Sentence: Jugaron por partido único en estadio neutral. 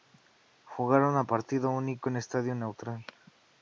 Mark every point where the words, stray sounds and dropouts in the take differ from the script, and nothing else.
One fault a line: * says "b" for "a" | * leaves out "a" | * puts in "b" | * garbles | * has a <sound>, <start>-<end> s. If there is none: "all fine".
* says "a" for "por"